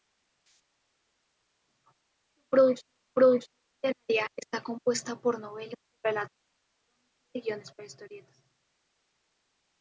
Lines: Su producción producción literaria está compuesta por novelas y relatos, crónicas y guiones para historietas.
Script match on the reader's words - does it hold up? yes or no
yes